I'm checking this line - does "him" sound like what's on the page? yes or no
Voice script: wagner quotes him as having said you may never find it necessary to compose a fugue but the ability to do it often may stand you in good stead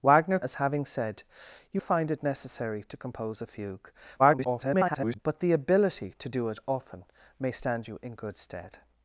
no